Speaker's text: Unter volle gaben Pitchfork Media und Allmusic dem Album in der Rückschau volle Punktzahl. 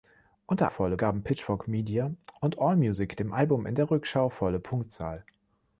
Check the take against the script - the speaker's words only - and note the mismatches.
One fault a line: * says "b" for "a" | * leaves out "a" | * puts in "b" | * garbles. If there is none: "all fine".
all fine